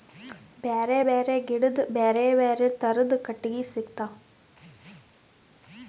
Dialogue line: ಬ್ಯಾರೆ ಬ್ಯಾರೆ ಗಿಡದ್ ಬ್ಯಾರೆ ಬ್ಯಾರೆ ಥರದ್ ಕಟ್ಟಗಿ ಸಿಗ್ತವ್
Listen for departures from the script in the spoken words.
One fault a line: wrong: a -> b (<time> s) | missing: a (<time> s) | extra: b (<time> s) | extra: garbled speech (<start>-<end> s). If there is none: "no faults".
no faults